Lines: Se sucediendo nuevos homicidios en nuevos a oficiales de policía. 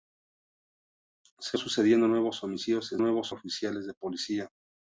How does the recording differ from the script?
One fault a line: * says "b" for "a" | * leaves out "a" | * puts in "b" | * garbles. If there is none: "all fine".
all fine